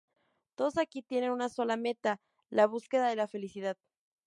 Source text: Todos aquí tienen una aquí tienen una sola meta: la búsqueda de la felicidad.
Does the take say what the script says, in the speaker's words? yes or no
no